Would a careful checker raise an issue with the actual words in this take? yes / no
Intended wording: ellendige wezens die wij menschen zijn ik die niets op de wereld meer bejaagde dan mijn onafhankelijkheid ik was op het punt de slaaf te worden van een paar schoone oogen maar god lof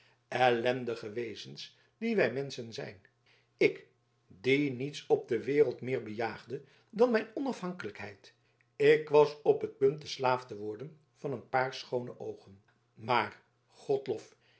no